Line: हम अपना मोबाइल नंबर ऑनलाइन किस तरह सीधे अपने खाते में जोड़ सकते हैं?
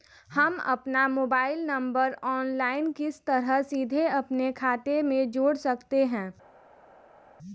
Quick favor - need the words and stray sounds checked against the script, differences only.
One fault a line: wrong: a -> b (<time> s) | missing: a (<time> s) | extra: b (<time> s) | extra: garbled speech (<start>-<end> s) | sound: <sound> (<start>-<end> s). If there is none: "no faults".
no faults